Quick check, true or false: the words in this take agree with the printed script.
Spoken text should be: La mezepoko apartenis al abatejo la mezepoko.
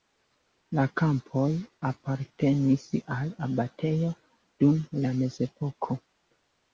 false